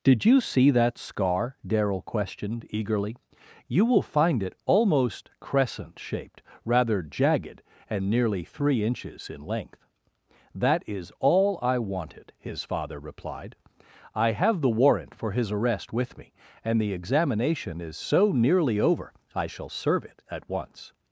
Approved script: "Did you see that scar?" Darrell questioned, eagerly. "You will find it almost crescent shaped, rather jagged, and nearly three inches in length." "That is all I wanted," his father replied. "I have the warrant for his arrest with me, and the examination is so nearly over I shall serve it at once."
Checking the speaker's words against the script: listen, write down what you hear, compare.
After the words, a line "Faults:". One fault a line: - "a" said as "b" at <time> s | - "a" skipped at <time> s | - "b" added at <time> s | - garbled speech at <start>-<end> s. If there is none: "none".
"Did you see that scar?" Darrell questioned, eagerly. "You will find it almost crescent shaped, rather jagged, and nearly three inches in length." "That is all I wanted," his father replied. "I have the warrant for his arrest with me, and the examination is so nearly over I shall serve it at once."
Faults:
none